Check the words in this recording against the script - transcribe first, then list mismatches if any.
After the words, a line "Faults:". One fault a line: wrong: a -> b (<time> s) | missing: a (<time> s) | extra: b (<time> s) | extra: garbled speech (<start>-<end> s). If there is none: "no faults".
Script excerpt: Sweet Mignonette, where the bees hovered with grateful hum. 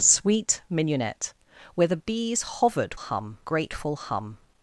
Sweet Mignonette, where the bees hovered hum grateful hum.
Faults:
wrong: with -> hum (2.9 s)